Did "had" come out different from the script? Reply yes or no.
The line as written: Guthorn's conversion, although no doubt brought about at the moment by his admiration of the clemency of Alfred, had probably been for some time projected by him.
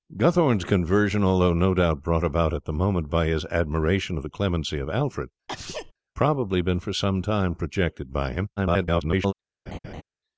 yes